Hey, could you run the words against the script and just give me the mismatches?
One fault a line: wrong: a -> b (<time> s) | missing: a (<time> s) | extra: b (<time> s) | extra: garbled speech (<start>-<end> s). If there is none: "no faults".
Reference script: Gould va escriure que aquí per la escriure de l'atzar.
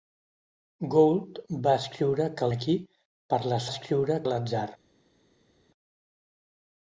no faults